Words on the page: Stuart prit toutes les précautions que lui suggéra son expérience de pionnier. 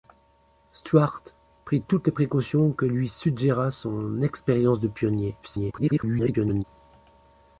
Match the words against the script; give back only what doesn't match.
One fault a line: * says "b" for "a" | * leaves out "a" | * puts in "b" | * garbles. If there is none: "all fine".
* garbles